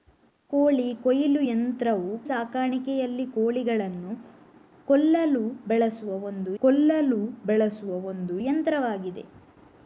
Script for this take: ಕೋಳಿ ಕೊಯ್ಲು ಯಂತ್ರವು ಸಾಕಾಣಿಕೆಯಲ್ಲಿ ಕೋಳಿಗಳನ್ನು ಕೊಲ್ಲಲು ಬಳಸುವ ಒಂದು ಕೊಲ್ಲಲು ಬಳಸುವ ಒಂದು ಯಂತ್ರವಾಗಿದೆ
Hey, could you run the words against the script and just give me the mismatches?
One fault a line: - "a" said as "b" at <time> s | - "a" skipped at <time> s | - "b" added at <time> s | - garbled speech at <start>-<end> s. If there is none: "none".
none